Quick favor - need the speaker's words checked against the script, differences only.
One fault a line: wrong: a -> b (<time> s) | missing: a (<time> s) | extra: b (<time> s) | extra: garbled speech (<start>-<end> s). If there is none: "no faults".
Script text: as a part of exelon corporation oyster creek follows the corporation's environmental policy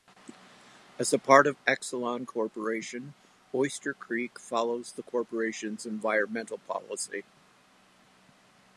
no faults